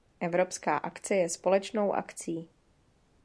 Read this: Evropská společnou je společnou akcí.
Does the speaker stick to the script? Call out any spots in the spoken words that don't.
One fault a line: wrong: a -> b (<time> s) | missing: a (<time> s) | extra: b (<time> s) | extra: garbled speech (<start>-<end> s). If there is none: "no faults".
wrong: společnou -> akce (0.7 s)